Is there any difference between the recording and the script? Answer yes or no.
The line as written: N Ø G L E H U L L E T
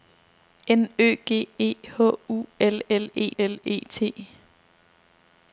yes